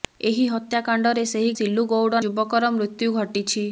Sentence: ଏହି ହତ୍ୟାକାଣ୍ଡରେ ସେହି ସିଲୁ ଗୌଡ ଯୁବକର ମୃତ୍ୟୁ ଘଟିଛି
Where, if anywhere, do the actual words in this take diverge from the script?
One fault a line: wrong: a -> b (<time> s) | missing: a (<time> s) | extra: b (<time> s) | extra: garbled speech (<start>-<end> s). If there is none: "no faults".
no faults